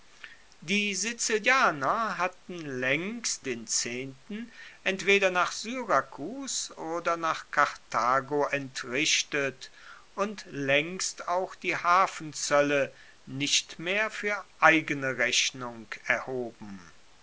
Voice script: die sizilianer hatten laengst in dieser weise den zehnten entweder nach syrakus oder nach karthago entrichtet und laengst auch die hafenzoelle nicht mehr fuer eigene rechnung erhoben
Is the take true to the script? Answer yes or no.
no